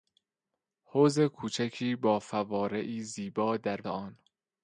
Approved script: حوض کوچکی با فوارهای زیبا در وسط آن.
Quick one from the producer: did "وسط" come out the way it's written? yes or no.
no